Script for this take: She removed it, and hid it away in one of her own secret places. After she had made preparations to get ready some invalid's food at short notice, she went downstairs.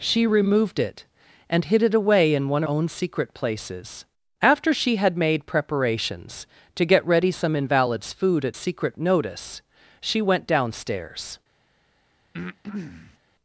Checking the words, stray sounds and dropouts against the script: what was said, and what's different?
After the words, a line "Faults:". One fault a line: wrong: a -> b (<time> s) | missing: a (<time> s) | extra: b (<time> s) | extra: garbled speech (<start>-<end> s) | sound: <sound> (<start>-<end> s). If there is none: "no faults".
She removed it, and hid it away in one own secret places. After she had made preparations to get ready some invalid's food at secret notice, she went downstairs.
Faults:
missing: of her (2.6 s)
wrong: short -> secret (8.5 s)
sound: breath (12.3-13.2 s)